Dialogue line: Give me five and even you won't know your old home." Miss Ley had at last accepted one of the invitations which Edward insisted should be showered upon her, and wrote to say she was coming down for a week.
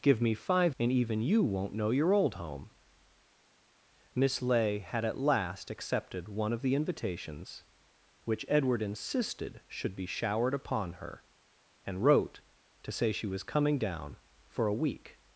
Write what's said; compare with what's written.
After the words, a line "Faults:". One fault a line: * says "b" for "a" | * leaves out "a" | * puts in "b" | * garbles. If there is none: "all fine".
Give me five and even you won't know your old home." Miss Ley had at last accepted one of the invitations which Edward insisted should be showered upon her, and wrote to say she was coming down for a week.
Faults:
all fine